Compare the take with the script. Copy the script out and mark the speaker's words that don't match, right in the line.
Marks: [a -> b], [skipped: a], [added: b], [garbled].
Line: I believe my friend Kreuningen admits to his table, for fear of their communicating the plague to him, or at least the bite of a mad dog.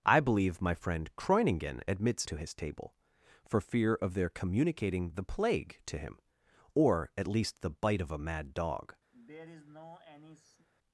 I believe my friend Kreuningen admits to his table, for fear of their communicating the plague to him, or at least the bite of a mad dog.